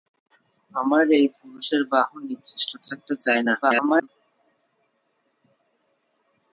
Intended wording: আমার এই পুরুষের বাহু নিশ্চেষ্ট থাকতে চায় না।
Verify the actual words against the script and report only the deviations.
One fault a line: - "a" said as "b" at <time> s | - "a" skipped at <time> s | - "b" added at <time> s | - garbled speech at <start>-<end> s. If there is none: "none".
- garbled speech at 3.6-4.1 s